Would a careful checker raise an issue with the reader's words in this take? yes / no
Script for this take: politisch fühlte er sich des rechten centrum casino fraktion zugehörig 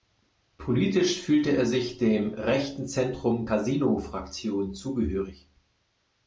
yes